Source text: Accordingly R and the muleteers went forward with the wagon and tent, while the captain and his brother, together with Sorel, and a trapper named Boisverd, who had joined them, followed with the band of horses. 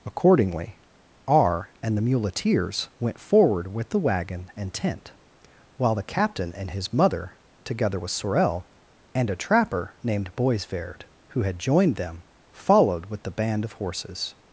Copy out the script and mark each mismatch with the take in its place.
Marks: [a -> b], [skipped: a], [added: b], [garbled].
Accordingly R and the muleteers went forward with the wagon and tent, while the captain and his [brother, -> mother] together with Sorel, and a trapper named Boisverd, who had joined them, followed with the band of horses.